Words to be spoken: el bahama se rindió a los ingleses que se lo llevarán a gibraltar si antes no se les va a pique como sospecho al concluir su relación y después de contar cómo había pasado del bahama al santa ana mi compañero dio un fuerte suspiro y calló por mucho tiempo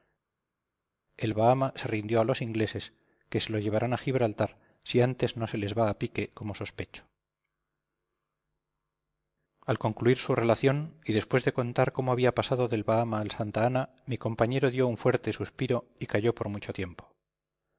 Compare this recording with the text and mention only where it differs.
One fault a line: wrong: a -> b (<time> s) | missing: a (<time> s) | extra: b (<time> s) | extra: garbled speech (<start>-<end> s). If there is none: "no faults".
no faults